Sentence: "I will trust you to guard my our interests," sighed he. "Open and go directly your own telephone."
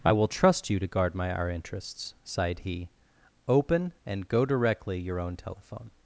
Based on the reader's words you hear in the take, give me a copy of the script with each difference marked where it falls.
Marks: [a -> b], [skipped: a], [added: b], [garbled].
"I will trust you to guard my our interests," sighed he. "Open and go directly your own telephone."